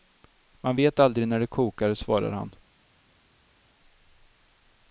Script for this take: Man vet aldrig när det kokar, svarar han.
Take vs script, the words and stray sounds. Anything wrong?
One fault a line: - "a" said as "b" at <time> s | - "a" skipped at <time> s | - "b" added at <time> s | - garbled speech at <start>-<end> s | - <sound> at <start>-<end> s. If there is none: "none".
none